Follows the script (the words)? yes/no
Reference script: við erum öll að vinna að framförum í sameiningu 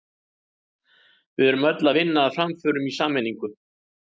yes